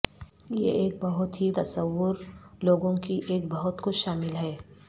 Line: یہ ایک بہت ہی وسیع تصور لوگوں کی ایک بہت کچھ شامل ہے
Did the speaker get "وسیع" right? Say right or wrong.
wrong